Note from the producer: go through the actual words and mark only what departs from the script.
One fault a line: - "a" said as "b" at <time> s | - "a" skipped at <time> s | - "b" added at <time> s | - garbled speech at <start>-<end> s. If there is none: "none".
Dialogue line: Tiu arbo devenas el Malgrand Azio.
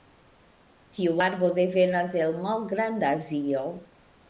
none